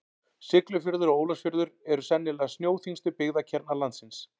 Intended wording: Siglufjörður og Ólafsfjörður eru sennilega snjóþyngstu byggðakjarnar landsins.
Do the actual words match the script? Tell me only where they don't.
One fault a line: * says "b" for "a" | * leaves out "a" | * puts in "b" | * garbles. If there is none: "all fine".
all fine